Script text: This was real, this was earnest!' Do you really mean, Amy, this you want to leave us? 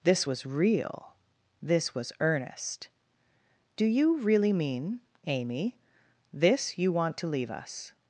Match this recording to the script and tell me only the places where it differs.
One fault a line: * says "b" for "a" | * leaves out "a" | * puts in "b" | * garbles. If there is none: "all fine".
all fine